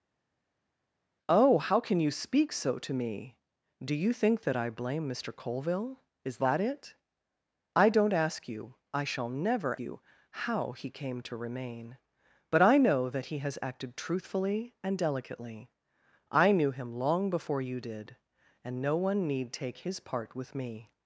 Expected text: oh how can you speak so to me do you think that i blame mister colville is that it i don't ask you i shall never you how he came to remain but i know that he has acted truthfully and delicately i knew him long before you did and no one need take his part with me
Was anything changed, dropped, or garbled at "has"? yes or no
no